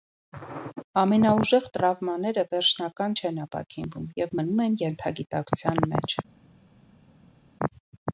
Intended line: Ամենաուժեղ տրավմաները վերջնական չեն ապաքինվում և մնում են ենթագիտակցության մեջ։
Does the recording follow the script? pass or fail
pass